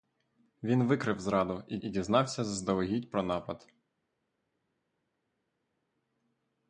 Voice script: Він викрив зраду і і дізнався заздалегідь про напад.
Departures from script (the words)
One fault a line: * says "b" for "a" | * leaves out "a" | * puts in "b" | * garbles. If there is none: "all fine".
all fine